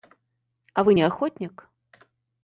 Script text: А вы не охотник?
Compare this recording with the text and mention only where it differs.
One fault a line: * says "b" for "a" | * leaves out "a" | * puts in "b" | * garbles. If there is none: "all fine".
all fine